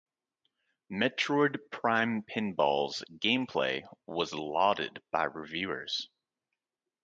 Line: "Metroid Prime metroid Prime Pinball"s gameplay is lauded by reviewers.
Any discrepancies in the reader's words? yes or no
yes